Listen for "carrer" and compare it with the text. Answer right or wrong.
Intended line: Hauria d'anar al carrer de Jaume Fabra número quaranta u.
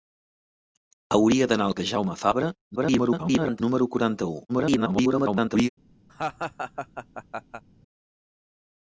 wrong